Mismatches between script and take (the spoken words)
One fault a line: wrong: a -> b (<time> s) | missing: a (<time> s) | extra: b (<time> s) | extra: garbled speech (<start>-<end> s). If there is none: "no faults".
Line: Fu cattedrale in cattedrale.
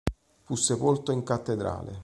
wrong: cattedrale -> sepolto (0.6 s)